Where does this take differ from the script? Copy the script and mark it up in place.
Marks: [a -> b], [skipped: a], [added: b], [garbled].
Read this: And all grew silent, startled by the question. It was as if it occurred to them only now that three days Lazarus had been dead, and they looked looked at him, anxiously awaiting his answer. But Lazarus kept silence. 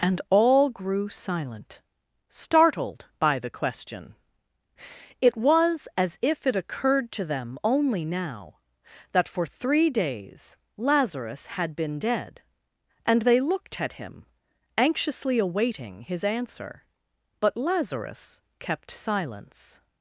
And all grew silent, startled by the question. It was as if it occurred to them only now that [added: for] three days Lazarus had been dead, and they looked [skipped: looked] at him, anxiously awaiting his answer. But Lazarus kept silence.